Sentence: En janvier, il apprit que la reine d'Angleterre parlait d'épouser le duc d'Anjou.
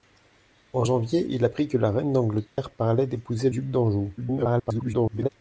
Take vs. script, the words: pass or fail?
fail